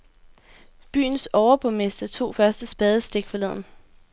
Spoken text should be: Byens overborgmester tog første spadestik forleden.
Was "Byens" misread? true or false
false